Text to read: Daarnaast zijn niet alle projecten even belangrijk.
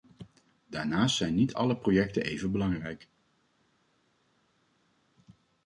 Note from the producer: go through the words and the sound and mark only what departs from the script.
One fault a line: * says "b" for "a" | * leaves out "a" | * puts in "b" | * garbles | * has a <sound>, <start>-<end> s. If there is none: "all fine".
all fine